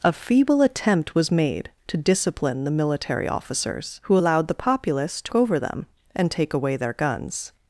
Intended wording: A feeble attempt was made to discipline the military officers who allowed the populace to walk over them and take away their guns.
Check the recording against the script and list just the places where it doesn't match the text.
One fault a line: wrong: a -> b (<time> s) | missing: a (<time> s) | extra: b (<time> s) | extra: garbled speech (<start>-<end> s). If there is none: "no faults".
missing: walk (5.3 s)